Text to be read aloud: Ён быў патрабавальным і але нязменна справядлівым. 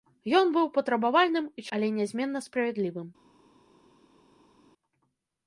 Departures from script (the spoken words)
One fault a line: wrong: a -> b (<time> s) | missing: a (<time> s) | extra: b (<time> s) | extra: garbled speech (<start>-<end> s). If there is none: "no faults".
no faults